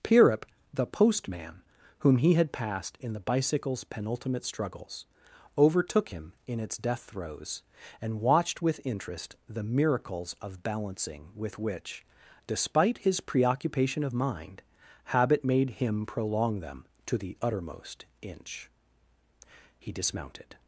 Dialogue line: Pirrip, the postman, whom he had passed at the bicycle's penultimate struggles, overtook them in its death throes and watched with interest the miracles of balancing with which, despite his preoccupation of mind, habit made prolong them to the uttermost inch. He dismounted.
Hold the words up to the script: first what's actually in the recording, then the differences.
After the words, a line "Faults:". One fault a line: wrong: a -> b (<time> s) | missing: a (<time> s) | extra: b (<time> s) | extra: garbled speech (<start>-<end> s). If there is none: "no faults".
Pirrip, the postman, whom he had passed in the bicycle's penultimate struggles, overtook him in its death throes and watched with interest the miracles of balancing with which, despite his preoccupation of mind, habit made him prolong them to the uttermost inch. He dismounted.
Faults:
wrong: at -> in (3.0 s)
wrong: them -> him (6.1 s)
extra: him (15.7 s)